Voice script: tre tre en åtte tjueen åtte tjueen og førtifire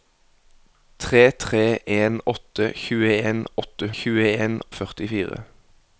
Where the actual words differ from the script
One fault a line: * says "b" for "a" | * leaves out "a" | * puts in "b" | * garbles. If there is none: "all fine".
all fine